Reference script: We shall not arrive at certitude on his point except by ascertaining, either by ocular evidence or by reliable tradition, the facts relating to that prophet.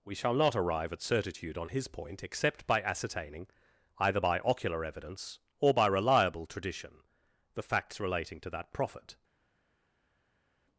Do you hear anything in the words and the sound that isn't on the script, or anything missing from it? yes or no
no